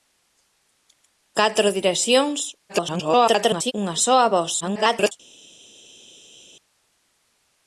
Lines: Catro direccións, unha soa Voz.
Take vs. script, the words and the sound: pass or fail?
fail